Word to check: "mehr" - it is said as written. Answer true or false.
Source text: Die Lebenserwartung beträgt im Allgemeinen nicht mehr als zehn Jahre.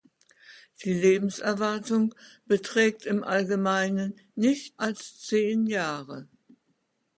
false